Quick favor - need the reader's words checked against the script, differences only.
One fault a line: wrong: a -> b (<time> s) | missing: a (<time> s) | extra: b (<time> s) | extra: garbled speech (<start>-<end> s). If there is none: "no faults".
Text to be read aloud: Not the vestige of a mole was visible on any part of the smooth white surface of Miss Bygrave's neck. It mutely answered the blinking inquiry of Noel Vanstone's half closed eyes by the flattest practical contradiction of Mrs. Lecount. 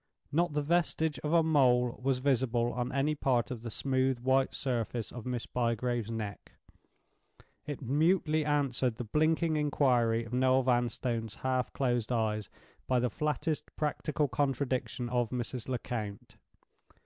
no faults